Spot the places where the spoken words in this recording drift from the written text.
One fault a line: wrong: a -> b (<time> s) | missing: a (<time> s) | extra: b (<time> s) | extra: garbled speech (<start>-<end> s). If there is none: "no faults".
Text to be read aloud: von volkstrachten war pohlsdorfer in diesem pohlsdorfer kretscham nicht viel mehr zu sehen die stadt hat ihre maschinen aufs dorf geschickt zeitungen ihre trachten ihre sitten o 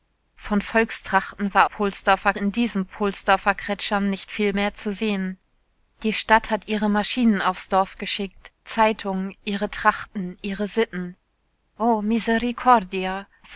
no faults